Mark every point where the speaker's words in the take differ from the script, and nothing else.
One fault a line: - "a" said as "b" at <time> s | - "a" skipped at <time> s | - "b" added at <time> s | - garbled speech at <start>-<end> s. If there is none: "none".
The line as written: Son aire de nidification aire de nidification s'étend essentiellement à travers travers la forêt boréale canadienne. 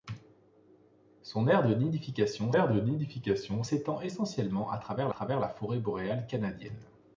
none